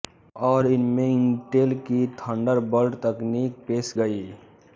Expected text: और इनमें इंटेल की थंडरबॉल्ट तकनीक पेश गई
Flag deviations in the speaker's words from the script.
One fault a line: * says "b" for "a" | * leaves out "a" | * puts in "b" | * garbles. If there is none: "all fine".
all fine